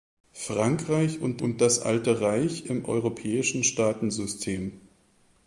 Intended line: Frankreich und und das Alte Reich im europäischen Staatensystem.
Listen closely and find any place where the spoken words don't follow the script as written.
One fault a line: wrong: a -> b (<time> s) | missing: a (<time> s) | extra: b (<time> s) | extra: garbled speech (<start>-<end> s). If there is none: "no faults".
no faults